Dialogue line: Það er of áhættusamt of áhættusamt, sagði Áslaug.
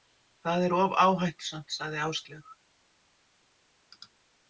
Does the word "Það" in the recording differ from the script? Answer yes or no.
no